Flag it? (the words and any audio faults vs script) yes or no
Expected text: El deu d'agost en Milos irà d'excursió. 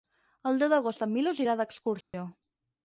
yes